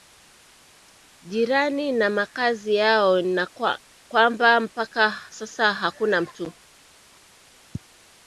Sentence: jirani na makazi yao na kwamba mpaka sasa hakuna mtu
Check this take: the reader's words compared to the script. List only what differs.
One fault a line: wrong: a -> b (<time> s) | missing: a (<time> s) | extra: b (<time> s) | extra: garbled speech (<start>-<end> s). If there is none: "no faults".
no faults